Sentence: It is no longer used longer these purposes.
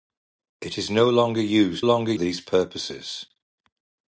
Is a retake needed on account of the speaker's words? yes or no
no